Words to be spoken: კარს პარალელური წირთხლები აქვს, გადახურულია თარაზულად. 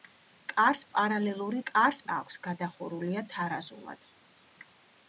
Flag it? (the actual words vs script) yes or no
yes